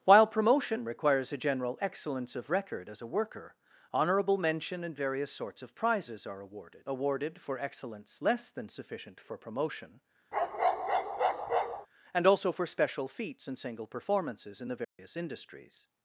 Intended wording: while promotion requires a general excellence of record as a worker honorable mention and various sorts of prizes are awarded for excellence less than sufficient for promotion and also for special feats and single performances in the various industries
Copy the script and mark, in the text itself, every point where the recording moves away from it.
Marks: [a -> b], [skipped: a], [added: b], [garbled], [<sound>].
while promotion requires a general excellence of record as a worker honorable mention and various sorts of prizes are awarded [added: awarded] for excellence less than sufficient for promotion [bark] and also for special feats and single performances in the various [dropout] industries